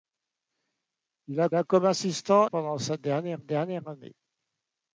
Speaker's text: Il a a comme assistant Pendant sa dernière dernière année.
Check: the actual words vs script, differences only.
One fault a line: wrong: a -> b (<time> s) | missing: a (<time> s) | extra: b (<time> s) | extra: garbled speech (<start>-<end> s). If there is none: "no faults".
no faults